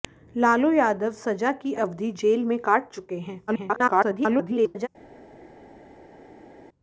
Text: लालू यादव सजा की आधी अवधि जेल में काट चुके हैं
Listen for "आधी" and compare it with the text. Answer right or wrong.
wrong